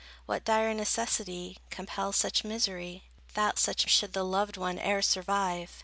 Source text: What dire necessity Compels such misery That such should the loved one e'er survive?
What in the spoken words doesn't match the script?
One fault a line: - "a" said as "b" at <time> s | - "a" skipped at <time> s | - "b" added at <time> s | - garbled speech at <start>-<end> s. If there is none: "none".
none